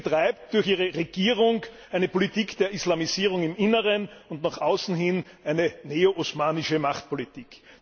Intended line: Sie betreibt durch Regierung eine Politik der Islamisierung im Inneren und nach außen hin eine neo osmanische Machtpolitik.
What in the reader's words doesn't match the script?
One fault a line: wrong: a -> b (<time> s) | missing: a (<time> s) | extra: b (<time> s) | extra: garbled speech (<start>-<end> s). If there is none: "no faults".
extra: ihre (0.6 s)